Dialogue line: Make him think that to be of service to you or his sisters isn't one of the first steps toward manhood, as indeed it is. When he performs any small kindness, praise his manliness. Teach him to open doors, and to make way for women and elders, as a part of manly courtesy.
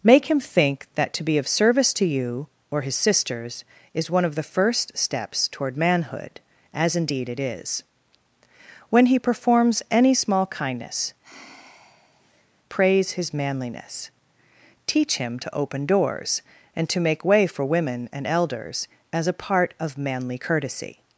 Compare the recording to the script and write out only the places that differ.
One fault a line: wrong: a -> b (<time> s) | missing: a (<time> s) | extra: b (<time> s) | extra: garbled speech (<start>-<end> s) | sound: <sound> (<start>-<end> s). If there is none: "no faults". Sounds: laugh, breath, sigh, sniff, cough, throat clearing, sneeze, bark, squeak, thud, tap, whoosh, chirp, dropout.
wrong: isn't -> is (3.9 s)
sound: sigh (11.2-12.5 s)